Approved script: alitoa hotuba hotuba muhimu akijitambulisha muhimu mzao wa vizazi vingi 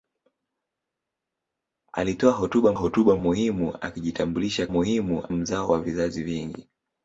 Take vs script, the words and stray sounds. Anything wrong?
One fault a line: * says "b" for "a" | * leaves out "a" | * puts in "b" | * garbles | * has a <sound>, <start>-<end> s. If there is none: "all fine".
all fine